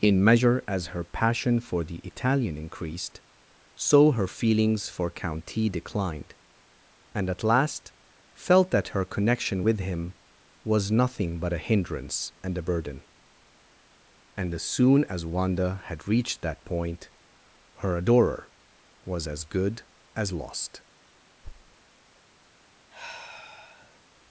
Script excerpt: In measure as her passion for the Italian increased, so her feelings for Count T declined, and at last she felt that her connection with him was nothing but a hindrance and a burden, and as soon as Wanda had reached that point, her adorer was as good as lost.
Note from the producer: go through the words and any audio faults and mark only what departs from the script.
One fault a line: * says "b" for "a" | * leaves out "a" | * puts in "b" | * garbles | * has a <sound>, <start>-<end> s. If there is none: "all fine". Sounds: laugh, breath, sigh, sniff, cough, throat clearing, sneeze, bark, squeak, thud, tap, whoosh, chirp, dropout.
* leaves out "she"
* has a thud, 21.4-21.8 s
* has a sigh, 22.9-24.0 s